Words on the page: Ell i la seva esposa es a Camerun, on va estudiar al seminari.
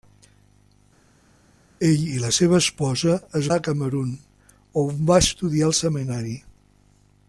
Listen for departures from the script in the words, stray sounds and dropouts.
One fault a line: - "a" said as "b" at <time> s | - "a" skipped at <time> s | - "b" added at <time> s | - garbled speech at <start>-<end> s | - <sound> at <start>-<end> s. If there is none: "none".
none